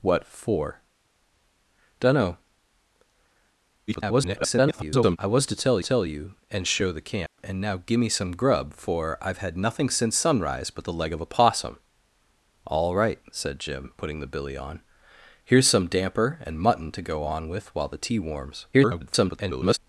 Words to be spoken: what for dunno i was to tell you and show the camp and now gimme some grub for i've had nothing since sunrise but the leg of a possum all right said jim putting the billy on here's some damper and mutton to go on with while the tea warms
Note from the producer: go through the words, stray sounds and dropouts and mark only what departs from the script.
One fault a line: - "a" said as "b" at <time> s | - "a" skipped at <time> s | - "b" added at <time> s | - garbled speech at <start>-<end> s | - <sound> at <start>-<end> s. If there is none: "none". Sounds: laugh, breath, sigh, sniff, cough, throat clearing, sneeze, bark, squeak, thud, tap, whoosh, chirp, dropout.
- garbled speech at 3.9-5.2 s
- "tell" added at 5.8 s
- dropout at 7.3-7.4 s
- garbled speech at 18.7-19.8 s